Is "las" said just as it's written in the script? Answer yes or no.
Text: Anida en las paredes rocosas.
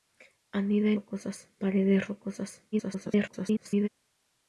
no